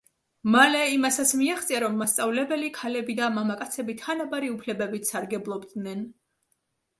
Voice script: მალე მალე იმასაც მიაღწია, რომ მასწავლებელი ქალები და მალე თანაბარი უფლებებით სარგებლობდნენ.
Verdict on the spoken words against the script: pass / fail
fail